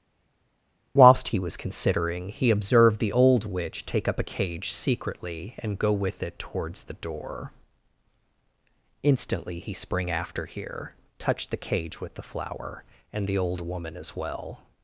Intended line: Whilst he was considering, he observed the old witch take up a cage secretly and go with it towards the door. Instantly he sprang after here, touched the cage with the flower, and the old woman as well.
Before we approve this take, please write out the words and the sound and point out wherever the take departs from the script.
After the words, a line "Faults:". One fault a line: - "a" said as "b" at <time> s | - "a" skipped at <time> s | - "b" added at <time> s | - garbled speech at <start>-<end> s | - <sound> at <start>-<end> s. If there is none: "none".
Whilst he was considering, he observed the old witch take up a cage secretly and go with it towards the door. Instantly he sprang after here, touched the cage with the flower, and the old woman as well.
Faults:
none